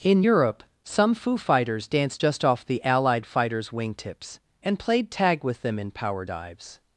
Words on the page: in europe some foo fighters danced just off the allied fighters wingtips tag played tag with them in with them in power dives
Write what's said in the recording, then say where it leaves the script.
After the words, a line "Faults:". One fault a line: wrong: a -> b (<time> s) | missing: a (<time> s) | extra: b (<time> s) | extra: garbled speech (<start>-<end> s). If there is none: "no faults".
in europe some foo fighters danced just off the allied fighters wingtips and played tag with them in power dives
Faults:
wrong: tag -> and (4.6 s)
missing: with them in (5.9 s)